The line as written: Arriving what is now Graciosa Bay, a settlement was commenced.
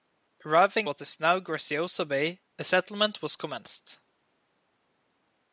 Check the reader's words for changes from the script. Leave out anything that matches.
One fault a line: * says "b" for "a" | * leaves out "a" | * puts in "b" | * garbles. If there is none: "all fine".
all fine